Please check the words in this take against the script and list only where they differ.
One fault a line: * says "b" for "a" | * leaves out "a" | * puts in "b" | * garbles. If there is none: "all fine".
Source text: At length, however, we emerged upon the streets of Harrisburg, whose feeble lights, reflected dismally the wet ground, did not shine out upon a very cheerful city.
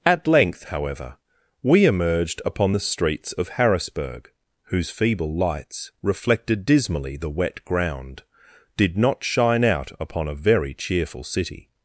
all fine